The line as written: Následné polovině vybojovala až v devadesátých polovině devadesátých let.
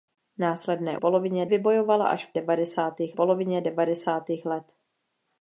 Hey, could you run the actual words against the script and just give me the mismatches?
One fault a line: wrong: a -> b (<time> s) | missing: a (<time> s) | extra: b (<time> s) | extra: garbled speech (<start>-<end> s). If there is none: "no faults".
no faults